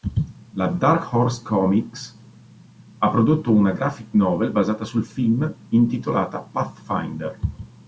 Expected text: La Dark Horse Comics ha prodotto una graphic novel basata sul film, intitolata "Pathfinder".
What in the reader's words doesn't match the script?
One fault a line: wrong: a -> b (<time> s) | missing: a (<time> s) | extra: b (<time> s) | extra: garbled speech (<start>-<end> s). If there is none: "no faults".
no faults